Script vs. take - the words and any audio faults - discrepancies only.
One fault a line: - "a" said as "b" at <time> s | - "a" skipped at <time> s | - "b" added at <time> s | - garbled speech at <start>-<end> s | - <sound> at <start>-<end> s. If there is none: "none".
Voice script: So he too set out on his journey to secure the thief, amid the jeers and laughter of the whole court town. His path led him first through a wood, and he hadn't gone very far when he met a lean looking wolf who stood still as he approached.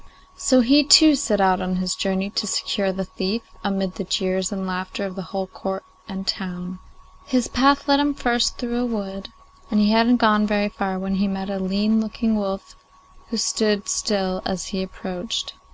- "and" added at 6.1 s